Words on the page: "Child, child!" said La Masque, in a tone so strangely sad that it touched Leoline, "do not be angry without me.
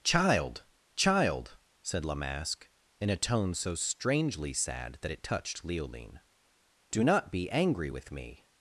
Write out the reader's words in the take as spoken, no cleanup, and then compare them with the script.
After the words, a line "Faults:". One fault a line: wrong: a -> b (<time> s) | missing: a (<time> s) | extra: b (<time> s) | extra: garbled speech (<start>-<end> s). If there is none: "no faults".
"Child, child!" said La Masque, in a tone so strangely sad that it touched Leoline, "do not be angry with me.
Faults:
wrong: without -> with (7.9 s)